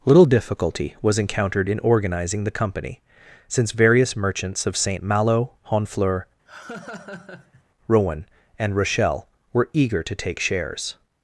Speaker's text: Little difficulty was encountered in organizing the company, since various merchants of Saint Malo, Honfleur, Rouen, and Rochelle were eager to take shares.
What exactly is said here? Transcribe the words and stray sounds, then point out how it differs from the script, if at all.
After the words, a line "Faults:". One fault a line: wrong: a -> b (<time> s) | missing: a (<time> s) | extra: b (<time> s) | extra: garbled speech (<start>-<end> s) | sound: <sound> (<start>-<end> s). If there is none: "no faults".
Little difficulty was encountered in organizing the company, since various merchants of Saint Malo, Honfleur, Rouen, and Rochelle were eager to take shares.
Faults:
sound: laugh (6.5-7.6 s)